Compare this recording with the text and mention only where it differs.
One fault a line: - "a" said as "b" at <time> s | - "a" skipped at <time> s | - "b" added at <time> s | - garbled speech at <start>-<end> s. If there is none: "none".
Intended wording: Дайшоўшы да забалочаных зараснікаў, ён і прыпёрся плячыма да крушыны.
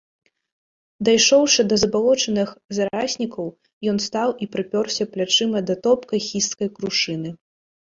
- "стаў" added at 4.1 s
- "топкай хісткай" added at 5.9 s